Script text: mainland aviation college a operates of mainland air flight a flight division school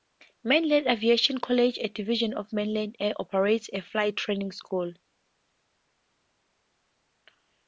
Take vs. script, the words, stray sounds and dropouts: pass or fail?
fail